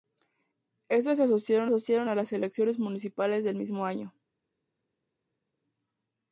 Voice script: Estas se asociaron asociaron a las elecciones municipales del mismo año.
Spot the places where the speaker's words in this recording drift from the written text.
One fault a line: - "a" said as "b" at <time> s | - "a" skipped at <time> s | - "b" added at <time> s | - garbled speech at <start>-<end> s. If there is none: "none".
none